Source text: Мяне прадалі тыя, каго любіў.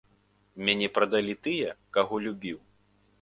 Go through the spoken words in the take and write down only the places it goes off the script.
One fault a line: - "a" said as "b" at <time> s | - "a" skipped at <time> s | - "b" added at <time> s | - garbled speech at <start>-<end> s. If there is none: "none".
none